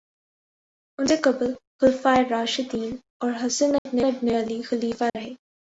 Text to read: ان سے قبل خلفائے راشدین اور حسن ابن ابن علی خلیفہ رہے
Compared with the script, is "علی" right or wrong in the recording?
right